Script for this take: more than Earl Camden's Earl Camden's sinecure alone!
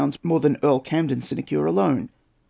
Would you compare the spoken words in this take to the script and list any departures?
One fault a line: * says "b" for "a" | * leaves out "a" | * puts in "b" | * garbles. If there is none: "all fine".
* leaves out "Earl Camden's"